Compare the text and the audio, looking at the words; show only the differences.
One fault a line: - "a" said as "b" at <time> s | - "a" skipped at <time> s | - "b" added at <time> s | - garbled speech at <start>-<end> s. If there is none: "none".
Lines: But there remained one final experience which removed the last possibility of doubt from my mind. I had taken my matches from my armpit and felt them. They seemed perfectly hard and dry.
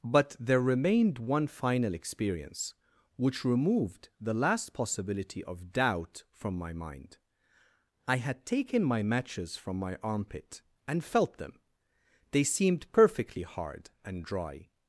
none